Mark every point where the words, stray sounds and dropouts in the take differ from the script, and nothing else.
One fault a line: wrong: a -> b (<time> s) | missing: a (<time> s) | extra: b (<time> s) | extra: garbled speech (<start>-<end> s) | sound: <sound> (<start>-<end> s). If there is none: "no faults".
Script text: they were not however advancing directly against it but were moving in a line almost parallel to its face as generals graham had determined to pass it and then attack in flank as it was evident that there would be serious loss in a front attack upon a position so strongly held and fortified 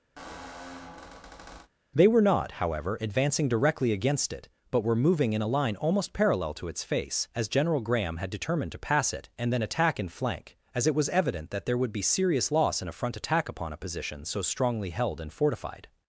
sound: squeak (0.2-1.7 s)
wrong: generals -> general (7.5 s)